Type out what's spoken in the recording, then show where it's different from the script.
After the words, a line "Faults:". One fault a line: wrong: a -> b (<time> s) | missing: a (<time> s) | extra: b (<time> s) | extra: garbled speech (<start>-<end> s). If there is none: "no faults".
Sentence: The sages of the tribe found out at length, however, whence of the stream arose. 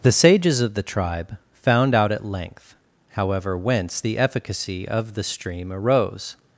The sages of the tribe found out at length, however, whence the efficacy of the stream arose.
Faults:
extra: the efficacy (4.0 s)